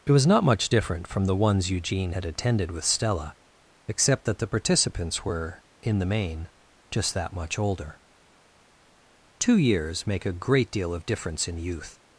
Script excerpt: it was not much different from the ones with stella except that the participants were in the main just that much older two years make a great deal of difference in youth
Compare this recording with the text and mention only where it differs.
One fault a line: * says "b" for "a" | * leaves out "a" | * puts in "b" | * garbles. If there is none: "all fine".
* puts in "eugene had attended"